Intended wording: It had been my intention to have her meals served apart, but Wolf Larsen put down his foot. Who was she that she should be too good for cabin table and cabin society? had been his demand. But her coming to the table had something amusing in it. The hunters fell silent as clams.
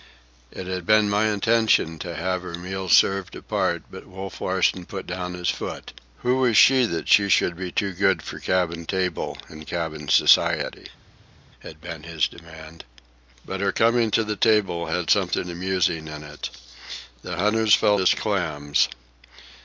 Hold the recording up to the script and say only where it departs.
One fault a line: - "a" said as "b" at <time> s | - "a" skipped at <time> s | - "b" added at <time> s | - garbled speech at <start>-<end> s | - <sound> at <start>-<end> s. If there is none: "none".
- "silent" skipped at 18.0 s